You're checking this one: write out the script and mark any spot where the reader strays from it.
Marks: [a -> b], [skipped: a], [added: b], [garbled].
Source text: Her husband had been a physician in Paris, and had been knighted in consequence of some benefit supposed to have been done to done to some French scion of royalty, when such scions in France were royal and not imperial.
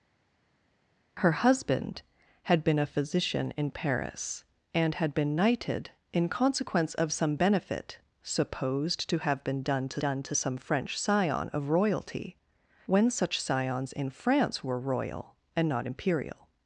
Her husband had been a physician in Paris, and had been knighted in consequence of some benefit supposed to have been done to done to some French scion of royalty, when such scions in France were royal and not imperial.